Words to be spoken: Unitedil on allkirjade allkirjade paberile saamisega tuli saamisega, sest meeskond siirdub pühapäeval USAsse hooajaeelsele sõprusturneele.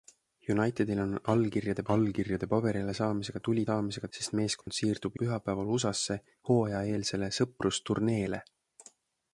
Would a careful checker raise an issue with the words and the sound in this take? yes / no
yes